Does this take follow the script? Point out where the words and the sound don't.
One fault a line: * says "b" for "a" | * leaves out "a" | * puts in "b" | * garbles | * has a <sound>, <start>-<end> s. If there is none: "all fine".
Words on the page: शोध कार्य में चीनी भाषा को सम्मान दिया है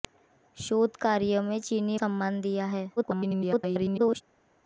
* leaves out "भाषा को"
* garbles